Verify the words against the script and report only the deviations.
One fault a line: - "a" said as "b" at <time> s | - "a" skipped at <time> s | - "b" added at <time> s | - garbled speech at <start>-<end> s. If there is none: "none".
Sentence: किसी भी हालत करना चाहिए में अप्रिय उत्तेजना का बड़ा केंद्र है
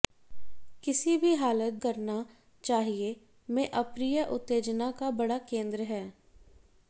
none